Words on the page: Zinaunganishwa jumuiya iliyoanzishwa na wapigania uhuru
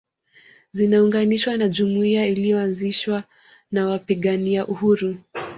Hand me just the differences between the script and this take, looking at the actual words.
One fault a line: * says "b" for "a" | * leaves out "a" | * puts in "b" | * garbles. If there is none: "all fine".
* puts in "na"